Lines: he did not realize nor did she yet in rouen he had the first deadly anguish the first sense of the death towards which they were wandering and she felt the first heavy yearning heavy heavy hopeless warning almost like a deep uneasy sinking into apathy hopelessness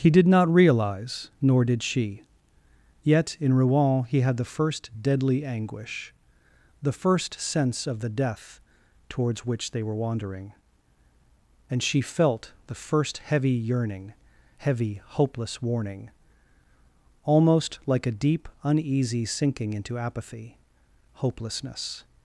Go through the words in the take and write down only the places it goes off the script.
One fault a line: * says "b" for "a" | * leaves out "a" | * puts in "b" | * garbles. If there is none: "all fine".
* leaves out "heavy"